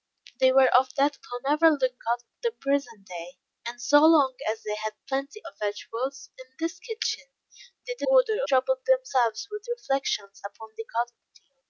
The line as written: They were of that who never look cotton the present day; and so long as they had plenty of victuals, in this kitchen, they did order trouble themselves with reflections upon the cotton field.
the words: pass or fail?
pass